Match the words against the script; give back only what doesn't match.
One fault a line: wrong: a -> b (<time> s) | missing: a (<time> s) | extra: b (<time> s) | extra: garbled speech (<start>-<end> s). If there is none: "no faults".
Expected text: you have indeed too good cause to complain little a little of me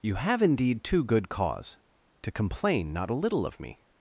wrong: little -> not (2.9 s)